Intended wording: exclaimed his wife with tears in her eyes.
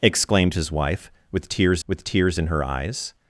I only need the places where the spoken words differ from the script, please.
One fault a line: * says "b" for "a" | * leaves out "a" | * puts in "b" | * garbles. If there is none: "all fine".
* puts in "with tears"